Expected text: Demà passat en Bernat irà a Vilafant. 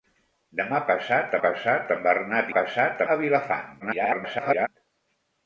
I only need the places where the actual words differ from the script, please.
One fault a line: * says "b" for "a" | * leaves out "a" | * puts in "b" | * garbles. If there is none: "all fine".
* puts in "passat"
* says "passat" for "irà"
* garbles